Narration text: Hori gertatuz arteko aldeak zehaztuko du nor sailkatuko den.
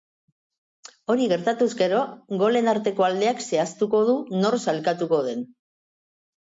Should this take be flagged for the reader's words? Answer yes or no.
yes